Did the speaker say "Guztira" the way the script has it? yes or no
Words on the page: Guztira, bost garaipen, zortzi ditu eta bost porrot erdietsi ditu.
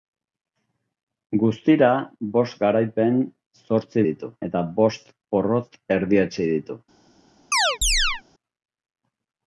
yes